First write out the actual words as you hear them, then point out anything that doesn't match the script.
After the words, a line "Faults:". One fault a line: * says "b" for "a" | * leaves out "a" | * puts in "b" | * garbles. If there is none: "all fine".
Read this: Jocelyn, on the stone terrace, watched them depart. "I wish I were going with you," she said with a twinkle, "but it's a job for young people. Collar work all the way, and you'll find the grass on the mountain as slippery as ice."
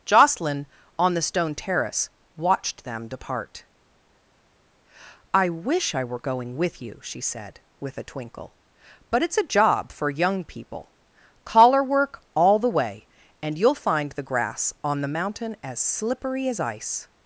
Jocelyn, on the stone terrace, watched them depart. "I wish I were going with you," she said with a twinkle, "but it's a job for young people. Collar work all the way, and you'll find the grass on the mountain as slippery as ice."
Faults:
all fine